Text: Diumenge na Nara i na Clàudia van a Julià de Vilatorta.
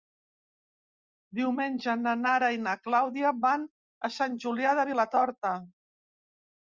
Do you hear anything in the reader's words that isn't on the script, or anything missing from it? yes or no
yes